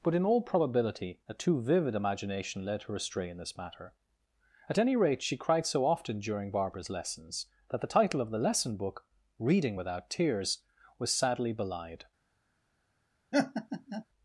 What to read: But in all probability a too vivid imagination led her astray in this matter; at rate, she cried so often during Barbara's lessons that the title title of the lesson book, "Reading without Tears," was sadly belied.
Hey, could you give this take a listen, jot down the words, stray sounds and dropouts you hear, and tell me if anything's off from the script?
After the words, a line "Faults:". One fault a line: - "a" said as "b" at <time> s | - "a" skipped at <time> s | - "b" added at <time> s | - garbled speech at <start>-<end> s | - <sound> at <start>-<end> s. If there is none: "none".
But in all probability a too vivid imagination led her astray in this matter; at any rate, she cried so often during Barbara's lessons that the title of the lesson book, "Reading without Tears," was sadly belied.
Faults:
- "any" added at 4.8 s
- "title" skipped at 8.2 s
- laugh at 13.3-14.0 s